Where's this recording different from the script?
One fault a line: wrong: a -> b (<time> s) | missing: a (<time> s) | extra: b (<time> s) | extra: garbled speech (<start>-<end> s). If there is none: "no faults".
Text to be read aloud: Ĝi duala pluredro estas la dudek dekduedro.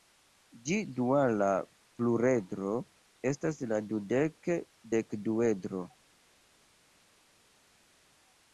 no faults